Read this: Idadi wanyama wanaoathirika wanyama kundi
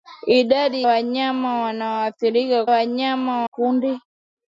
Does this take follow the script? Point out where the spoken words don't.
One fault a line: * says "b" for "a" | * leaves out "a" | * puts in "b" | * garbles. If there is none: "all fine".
all fine